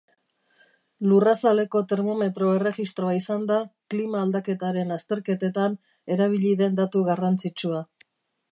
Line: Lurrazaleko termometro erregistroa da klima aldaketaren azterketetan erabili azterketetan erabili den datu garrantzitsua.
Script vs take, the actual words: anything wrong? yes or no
yes